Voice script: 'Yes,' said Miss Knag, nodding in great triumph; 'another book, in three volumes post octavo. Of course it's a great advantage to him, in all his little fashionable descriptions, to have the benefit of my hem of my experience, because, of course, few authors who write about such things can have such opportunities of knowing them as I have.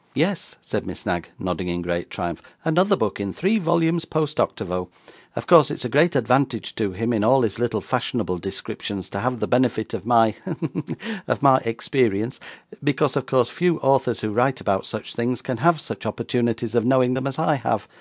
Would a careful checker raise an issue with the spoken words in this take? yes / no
no